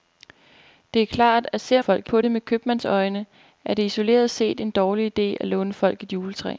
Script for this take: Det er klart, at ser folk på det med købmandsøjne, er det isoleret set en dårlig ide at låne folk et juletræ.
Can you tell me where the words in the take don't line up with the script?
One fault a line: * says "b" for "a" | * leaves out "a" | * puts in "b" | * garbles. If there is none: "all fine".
all fine